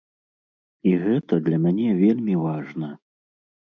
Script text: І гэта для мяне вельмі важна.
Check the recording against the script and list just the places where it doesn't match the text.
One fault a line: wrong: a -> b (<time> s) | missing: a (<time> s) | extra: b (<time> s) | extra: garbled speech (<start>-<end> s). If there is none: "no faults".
no faults